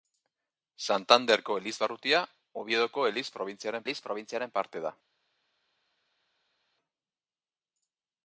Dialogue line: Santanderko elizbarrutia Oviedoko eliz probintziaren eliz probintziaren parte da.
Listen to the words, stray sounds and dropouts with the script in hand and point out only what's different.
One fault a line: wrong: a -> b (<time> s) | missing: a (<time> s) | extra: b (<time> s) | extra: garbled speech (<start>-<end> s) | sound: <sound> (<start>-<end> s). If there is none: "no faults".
no faults